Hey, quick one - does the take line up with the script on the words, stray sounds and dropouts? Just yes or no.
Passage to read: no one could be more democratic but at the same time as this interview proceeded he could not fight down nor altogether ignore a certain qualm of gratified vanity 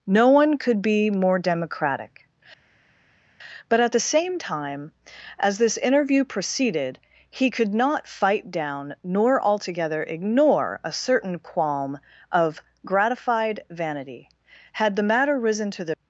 no